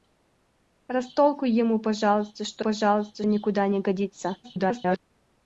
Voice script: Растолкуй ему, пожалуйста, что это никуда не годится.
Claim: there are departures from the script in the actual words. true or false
true